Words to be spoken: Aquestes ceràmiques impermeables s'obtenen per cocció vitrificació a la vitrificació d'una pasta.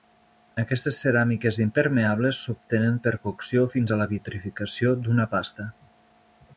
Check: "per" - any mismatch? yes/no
no